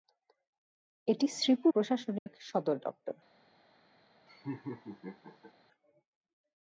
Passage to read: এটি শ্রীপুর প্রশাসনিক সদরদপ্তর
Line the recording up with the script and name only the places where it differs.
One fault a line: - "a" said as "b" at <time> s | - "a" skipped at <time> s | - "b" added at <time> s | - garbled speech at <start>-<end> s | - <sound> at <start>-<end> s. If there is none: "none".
- dropout at 2.2-2.3 s
- laugh at 4.3-5.5 s